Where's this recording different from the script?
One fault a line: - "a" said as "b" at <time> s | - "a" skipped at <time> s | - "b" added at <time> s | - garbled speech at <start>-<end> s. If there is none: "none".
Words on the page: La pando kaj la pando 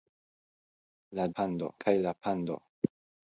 none